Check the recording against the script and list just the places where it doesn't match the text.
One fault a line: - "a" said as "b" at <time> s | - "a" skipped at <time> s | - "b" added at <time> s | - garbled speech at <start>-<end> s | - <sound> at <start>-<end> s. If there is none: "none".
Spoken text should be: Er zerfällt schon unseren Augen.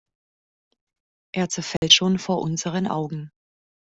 - dropout at 1.8-1.8 s
- "vor" added at 2.2 s